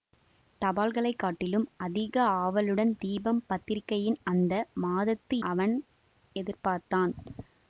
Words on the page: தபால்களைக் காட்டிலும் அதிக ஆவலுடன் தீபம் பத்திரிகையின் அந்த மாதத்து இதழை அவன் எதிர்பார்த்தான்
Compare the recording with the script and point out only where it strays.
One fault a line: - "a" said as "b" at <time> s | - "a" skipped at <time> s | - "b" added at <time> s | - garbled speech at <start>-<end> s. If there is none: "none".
- "இதழை" skipped at 5.4 s